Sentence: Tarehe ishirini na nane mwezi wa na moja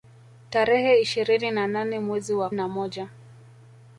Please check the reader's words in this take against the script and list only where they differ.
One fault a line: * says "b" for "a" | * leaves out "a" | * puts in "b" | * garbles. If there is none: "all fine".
all fine